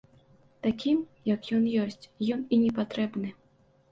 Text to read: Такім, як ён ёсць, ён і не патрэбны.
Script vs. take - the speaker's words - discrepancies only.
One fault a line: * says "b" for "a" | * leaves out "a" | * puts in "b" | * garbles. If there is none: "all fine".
all fine